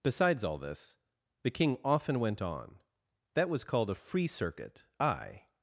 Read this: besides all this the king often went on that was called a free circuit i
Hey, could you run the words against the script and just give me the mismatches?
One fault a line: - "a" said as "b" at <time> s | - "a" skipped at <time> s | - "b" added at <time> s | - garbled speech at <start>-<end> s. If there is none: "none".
none